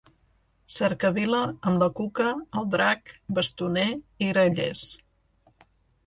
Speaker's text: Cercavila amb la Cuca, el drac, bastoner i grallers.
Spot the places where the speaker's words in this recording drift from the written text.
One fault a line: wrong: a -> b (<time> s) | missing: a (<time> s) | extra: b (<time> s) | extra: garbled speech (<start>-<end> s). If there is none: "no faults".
no faults